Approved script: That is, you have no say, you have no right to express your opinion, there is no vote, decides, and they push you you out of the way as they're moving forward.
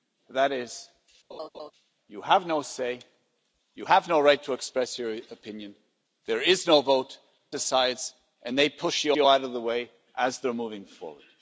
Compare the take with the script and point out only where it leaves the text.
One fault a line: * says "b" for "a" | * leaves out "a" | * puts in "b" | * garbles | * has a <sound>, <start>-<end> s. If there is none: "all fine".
* has a laugh, 1.3-1.7 s